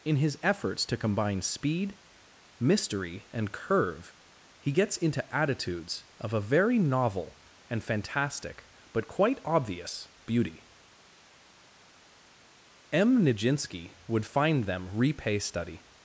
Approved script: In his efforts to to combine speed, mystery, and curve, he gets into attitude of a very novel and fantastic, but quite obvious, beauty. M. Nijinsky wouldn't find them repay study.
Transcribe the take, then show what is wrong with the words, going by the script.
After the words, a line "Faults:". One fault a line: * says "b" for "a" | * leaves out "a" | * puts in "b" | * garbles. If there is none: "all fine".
In his efforts to combine speed, mystery, and curve, he gets into attitudes of a very novel and fantastic, but quite obvious, beauty. M. Nijinsky would find them repay study.
Faults:
* leaves out "to"
* says "attitudes" for "attitude"
* says "would" for "wouldn't"